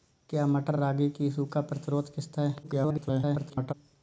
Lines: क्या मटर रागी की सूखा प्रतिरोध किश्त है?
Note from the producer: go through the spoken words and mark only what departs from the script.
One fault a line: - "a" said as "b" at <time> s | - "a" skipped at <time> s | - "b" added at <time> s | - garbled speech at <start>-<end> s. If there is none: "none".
- garbled speech at 2.6-3.7 s